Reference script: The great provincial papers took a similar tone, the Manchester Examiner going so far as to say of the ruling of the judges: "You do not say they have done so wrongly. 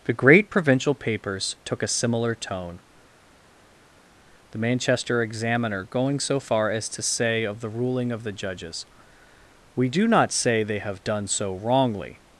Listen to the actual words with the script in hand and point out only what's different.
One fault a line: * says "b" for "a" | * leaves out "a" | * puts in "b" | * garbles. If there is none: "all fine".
* says "We" for "You"